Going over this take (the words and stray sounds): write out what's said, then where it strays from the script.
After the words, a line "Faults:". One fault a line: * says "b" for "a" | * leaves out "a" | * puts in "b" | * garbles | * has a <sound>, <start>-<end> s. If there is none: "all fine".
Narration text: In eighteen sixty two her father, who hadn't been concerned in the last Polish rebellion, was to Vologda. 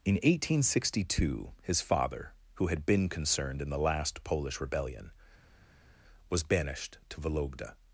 In eighteen sixty two his father, who had been concerned in the last Polish rebellion, was banished to Vologda.
Faults:
* says "his" for "her"
* says "had" for "hadn't"
* puts in "banished"